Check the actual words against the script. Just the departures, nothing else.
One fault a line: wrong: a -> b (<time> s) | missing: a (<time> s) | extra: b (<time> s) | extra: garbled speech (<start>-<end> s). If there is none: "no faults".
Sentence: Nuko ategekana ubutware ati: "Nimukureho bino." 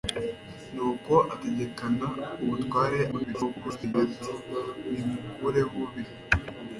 extra: garbled speech (3.1-3.9 s)